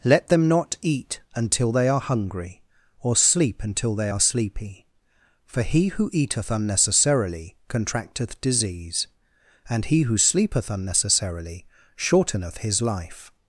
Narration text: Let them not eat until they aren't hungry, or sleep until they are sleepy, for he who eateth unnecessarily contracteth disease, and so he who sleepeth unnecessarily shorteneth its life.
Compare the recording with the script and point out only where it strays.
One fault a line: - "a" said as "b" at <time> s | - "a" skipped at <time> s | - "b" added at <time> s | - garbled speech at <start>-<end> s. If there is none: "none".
- "aren't" said as "are" at 1.9 s
- "so" skipped at 9.9 s
- "its" said as "his" at 12.6 s